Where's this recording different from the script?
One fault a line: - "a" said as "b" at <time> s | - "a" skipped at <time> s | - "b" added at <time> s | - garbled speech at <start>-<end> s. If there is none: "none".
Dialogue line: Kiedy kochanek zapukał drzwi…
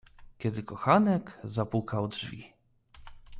none